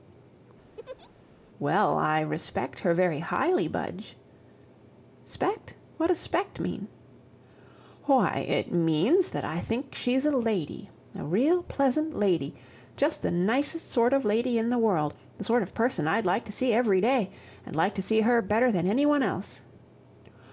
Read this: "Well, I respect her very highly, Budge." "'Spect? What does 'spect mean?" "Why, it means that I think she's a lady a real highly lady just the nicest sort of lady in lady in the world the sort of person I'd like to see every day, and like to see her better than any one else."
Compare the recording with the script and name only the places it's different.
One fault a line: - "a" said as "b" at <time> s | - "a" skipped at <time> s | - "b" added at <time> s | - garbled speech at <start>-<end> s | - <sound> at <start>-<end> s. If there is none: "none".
- laugh at 0.8-1.1 s
- "highly" said as "pleasant" at 11.6 s
- "lady in" skipped at 14.7 s